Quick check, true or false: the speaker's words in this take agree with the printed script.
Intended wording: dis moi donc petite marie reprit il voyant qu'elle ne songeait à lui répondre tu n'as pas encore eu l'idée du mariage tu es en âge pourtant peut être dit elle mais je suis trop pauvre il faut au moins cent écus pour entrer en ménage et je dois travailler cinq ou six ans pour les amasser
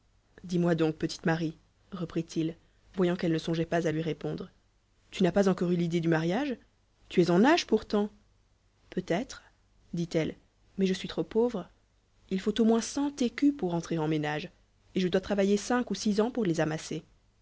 false